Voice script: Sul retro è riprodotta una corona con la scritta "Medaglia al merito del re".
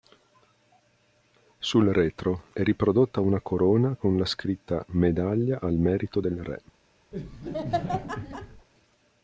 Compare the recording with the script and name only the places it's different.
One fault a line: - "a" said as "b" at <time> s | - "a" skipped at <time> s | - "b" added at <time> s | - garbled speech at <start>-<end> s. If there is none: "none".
none